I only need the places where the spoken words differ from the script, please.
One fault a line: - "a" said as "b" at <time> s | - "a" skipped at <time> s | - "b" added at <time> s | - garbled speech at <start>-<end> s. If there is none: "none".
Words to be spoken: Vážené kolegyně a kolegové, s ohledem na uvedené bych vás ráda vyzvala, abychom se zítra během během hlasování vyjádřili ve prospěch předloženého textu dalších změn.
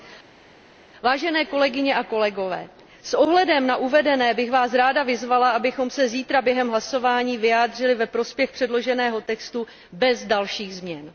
- "během" skipped at 6.7 s
- "bez" added at 9.9 s